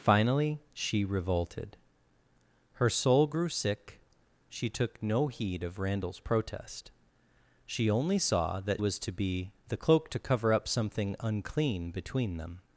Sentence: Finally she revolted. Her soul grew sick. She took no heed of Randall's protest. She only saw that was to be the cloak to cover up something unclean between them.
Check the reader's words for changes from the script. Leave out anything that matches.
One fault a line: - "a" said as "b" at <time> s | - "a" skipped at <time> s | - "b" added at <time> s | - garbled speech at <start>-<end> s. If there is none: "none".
none